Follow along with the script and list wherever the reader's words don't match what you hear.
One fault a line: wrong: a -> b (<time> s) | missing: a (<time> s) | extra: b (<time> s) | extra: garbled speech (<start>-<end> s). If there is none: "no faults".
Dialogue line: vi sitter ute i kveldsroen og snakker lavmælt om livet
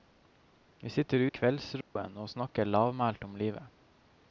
missing: ute (1.2 s)